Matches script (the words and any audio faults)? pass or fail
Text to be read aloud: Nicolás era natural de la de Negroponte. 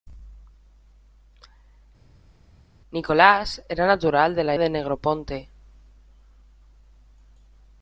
pass